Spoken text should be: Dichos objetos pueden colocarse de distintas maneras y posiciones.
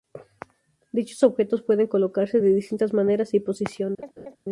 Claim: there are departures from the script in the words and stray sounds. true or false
true